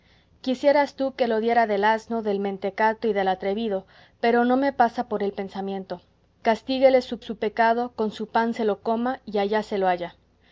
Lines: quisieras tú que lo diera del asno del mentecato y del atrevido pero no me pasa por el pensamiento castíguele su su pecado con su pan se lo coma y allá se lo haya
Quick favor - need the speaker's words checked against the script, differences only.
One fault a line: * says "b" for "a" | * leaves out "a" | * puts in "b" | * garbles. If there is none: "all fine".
all fine